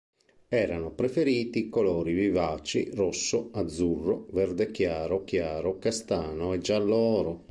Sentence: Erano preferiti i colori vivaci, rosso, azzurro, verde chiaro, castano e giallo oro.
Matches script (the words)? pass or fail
fail